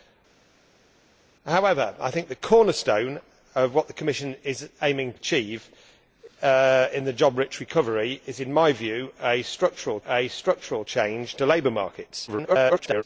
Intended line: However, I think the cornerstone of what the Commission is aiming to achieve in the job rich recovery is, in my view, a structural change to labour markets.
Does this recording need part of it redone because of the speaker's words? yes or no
yes